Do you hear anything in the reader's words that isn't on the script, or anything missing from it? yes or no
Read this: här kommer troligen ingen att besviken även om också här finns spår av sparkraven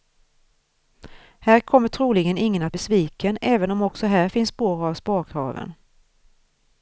no